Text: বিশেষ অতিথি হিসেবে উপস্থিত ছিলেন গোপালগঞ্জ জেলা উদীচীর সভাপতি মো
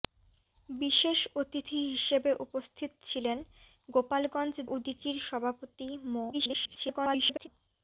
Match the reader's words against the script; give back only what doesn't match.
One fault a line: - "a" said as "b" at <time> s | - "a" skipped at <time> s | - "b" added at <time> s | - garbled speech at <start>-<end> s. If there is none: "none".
- "জেলা" skipped at 4.5 s
- garbled speech at 6.3-7.5 s